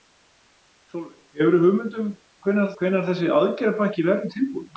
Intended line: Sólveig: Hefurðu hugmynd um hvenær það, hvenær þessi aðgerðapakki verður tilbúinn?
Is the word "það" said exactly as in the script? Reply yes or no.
no